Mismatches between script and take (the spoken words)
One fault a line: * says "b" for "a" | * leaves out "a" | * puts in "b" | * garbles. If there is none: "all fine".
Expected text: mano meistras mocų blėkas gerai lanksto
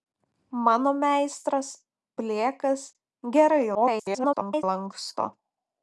* leaves out "mocų"
* garbles